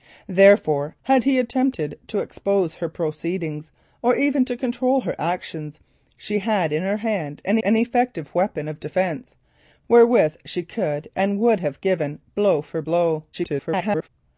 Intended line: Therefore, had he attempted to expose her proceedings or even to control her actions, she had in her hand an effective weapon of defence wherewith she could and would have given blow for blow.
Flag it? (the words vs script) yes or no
yes